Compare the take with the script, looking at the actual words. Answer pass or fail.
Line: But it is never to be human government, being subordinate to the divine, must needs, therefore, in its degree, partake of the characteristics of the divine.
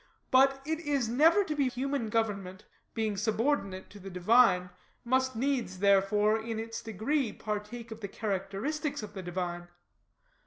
pass